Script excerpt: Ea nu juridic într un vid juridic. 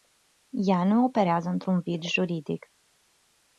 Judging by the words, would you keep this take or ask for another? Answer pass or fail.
fail